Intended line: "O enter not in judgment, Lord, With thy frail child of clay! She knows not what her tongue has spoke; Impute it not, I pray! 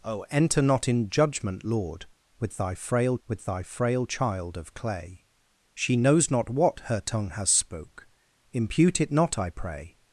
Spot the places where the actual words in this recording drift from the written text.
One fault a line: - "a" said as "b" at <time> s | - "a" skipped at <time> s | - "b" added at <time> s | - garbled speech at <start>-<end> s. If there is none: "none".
- "With thy frail" added at 3.3 s